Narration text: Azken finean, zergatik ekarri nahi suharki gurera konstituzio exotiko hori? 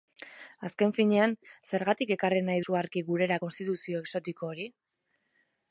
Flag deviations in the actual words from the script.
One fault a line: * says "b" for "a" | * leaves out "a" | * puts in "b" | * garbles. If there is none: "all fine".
all fine